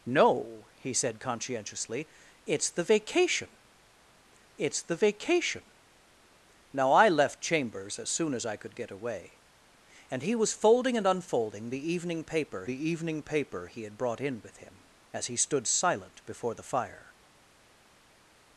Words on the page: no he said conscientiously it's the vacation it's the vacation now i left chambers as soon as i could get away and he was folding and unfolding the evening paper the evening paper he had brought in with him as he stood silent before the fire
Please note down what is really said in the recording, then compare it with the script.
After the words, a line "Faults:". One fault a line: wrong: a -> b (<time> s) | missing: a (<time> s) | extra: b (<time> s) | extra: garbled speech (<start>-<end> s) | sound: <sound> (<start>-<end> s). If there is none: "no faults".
no he said conscientiously it's the vacation it's the vacation now i left chambers as soon as i could get away and he was folding and unfolding the evening paper the evening paper he had brought in with him as he stood silent before the fire
Faults:
no faults